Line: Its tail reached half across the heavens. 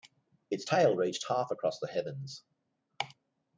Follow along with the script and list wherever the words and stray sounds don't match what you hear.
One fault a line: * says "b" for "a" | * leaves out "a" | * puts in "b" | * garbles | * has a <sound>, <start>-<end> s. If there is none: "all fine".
all fine